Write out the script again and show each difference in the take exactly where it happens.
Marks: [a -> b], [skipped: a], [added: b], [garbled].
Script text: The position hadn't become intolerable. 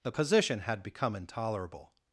The position [hadn't -> had] become intolerable.